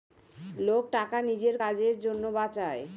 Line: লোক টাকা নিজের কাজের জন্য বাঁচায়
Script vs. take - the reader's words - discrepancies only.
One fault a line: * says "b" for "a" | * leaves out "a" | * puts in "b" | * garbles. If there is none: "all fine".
all fine